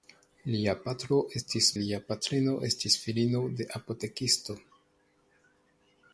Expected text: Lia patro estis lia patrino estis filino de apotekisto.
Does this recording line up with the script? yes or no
yes